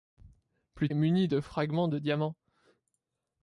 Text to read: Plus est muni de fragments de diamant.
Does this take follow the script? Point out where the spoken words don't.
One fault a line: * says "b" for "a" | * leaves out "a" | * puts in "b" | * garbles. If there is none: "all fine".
all fine